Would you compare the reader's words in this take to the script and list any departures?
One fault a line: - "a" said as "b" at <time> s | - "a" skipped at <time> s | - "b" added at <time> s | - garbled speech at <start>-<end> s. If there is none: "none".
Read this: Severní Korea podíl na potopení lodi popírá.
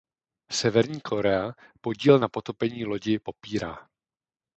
none